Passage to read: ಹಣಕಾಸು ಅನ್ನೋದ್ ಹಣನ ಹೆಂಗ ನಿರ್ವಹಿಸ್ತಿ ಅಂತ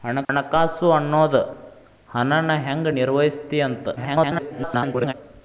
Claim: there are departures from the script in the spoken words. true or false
true